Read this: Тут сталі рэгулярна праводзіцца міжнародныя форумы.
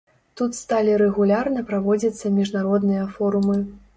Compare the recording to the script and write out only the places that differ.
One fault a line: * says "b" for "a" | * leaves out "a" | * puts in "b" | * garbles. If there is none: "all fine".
all fine